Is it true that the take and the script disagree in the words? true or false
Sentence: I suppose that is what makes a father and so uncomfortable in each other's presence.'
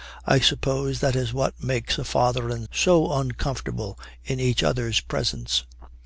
false